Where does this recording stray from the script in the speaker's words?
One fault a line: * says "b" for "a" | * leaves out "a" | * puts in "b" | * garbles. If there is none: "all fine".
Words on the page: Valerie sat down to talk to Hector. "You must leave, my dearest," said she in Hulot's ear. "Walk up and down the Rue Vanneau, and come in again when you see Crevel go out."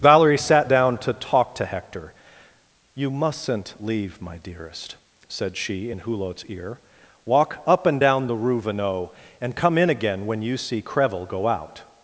* says "mustn't" for "must"